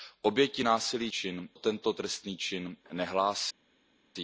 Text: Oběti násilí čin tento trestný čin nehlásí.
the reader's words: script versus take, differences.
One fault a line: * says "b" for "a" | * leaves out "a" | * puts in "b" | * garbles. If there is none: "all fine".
all fine